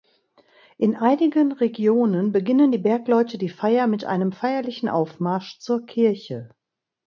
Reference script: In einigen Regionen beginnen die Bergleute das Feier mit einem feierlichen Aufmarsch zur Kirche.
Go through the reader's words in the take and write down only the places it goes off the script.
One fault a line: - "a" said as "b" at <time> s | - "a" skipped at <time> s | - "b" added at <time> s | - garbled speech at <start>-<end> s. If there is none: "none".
- "das" said as "die" at 3.4 s